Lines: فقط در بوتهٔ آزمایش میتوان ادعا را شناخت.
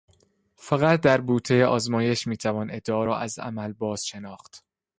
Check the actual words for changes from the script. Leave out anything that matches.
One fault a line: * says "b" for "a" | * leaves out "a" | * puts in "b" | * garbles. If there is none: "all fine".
* puts in "از عمل باز"